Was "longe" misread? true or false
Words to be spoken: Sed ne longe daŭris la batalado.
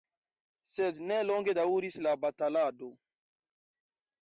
false